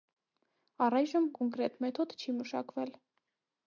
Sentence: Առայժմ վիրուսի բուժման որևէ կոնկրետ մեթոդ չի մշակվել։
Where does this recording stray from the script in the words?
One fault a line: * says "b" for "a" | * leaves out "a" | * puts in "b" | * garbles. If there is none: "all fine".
* leaves out "վիրուսի բուժման որևէ"